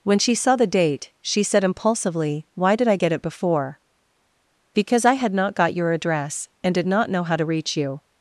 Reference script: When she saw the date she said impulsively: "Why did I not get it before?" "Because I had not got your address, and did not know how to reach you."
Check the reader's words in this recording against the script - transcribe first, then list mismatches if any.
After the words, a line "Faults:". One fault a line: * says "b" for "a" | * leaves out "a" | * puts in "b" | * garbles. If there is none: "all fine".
When she saw the date she said impulsively: "Why did I get it before?" "Because I had not got your address, and did not know how to reach you."
Faults:
* leaves out "not"